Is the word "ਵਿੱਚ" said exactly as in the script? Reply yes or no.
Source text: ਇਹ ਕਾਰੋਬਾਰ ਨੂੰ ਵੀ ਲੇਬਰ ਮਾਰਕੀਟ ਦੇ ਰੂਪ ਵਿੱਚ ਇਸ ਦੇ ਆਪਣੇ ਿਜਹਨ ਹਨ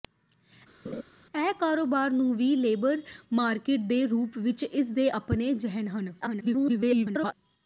yes